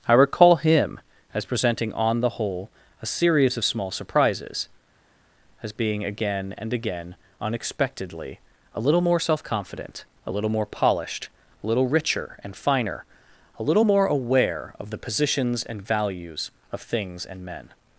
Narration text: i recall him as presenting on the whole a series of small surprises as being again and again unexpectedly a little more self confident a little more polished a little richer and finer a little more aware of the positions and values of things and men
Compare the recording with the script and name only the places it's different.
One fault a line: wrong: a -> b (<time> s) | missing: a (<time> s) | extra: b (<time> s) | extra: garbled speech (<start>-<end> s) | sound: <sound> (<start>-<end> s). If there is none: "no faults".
no faults